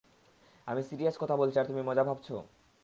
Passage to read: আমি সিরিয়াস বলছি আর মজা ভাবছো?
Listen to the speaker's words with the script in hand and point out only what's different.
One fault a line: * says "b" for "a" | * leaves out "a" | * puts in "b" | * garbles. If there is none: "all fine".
* puts in "কথা"
* puts in "তুমি"